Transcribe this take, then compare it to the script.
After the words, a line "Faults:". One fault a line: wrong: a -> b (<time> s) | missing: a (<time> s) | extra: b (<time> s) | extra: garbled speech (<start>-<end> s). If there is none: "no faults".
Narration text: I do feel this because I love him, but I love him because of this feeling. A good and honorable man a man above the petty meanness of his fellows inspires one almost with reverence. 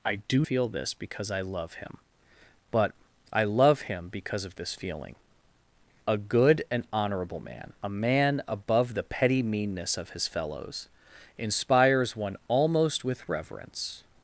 I do feel this because I love him, but I love him because of this feeling. A good and honorable man a man above the petty meanness of his fellows inspires one almost with reverence.
Faults:
no faults